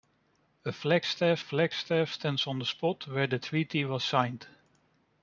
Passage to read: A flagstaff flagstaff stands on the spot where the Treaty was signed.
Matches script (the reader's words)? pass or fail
pass